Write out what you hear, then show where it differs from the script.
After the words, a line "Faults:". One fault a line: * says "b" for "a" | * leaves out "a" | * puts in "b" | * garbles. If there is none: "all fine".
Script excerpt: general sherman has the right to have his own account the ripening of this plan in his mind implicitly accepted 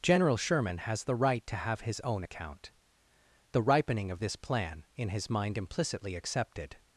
general sherman has the right to have his own account the ripening of this plan in his mind implicitly accepted
Faults:
all fine